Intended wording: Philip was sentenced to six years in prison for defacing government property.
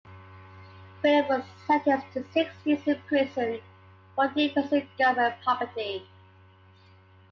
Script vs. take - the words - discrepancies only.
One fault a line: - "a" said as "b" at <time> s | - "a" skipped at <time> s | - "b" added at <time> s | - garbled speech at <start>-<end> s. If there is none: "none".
none